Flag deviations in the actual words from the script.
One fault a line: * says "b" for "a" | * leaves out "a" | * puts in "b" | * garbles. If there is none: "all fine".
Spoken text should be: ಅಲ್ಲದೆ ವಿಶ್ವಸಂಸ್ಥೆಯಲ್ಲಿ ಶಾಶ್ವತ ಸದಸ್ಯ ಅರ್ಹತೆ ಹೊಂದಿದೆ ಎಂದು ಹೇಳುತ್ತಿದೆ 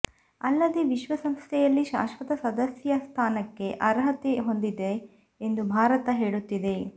* puts in "ಸ್ಥಾನಕ್ಕೆ"
* puts in "ಭಾರತ"